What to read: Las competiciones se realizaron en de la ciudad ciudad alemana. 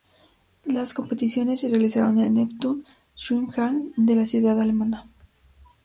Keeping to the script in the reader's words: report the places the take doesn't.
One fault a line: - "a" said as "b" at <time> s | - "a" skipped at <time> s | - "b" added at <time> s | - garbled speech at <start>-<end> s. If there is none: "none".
- "el Neptun Schwimmhalle" added at 2.2 s
- "ciudad" skipped at 4.6 s